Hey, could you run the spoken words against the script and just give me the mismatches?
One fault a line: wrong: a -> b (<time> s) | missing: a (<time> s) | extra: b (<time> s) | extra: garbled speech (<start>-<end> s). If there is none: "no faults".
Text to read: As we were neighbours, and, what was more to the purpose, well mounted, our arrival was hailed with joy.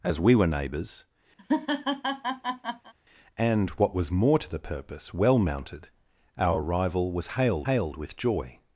extra: hailed (7.6 s)